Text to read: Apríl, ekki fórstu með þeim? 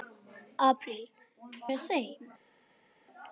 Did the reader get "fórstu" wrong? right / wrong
wrong